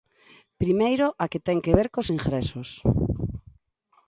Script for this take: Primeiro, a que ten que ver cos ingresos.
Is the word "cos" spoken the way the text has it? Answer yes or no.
yes